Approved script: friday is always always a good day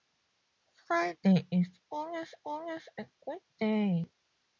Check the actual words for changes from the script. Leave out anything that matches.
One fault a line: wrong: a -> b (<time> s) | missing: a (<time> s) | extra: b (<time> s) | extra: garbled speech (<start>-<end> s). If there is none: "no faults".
no faults